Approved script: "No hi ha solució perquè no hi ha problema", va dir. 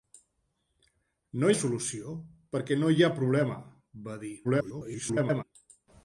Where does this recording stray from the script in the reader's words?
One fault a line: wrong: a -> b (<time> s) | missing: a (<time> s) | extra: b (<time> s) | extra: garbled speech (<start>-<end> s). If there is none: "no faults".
missing: hi (1.5 s)
extra: garbled speech (4.4-5.4 s)